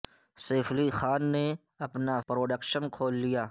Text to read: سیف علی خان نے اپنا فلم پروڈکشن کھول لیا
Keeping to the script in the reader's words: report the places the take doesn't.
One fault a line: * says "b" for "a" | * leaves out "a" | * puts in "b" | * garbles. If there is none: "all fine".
* leaves out "فلم"